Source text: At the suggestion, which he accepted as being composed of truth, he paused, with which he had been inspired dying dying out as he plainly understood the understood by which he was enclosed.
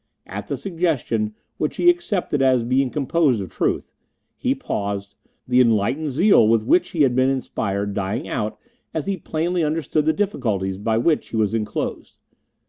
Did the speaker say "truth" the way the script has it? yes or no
yes